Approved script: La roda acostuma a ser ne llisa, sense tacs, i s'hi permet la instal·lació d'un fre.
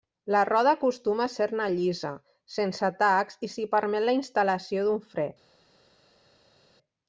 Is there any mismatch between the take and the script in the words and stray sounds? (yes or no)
no